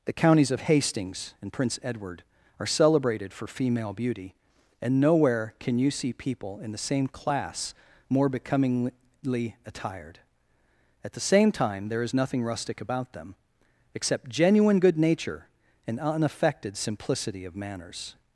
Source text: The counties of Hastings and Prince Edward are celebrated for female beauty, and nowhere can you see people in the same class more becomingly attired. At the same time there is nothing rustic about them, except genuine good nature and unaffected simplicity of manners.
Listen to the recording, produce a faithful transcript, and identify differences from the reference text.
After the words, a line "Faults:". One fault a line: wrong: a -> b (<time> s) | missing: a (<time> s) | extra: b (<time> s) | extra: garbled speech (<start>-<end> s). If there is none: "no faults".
The counties of Hastings and Prince Edward are celebrated for female beauty, and nowhere can you see people in the same class more becomingly attired. At the same time there is nothing rustic about them, except genuine good nature and unaffected simplicity of manners.
Faults:
no faults